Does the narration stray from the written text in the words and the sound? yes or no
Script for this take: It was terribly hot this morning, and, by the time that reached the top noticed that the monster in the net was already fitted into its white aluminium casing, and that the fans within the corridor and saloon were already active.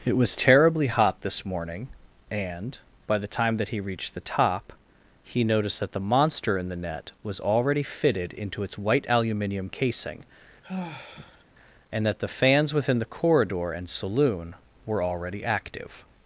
yes